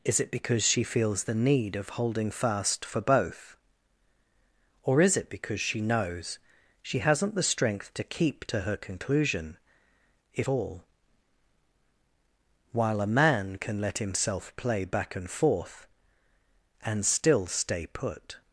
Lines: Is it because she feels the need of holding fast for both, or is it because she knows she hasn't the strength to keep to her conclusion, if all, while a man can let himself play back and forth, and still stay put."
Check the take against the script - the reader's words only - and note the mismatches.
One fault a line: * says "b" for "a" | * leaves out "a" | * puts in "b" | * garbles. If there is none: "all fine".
all fine